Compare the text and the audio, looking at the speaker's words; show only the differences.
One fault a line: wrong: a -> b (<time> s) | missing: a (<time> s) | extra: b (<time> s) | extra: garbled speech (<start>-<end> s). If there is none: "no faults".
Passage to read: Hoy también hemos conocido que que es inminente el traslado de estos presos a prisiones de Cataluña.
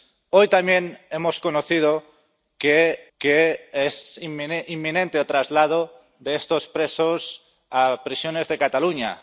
no faults